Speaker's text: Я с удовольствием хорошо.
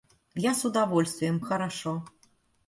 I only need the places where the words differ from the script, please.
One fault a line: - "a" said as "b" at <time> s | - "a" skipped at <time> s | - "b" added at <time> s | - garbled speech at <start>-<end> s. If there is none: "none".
none